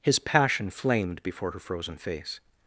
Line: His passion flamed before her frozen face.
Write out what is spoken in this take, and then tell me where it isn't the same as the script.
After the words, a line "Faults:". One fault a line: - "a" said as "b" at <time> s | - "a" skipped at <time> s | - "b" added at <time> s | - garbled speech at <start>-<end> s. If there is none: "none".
His passion flamed before her frozen face.
Faults:
none